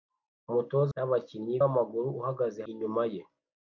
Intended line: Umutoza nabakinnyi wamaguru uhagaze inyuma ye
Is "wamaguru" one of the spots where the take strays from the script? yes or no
no